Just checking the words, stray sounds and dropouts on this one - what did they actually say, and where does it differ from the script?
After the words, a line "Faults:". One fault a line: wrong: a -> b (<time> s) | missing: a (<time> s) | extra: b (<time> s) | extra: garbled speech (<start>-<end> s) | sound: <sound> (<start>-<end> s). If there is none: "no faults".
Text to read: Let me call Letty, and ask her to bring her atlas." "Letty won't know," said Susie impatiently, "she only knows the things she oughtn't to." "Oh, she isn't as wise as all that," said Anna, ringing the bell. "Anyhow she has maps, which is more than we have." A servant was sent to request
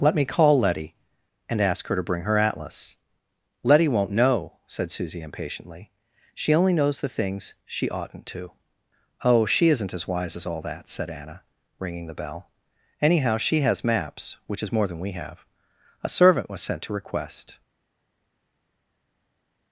Let me call Letty, and ask her to bring her atlas." "Letty won't know," said Susie impatiently, "she only knows the things she oughtn't to." "Oh, she isn't as wise as all that," said Anna, ringing the bell. "Anyhow she has maps, which is more than we have." A servant was sent to request
Faults:
no faults